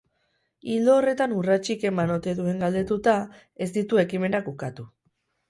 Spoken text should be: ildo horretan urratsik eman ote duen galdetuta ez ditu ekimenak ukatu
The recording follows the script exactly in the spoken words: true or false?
true